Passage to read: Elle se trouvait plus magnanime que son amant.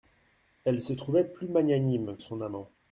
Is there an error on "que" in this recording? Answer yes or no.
yes